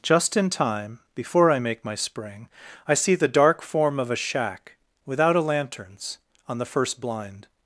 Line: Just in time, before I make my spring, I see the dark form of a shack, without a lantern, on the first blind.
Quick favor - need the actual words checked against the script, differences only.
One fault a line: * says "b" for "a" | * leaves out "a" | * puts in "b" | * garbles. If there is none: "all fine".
* says "lanterns" for "lantern"